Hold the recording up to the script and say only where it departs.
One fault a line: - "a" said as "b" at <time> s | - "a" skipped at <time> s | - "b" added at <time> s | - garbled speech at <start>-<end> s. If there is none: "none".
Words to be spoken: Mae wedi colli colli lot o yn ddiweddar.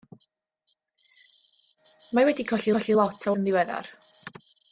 none